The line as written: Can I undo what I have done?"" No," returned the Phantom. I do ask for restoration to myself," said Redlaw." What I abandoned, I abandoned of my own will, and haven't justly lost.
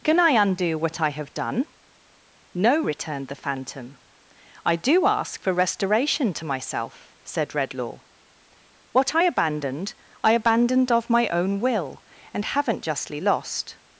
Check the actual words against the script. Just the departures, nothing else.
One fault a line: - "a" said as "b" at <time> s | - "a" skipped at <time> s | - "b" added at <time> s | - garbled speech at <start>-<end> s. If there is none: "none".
none